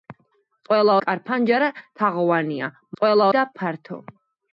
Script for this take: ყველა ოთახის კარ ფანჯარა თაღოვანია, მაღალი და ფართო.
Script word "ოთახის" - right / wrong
wrong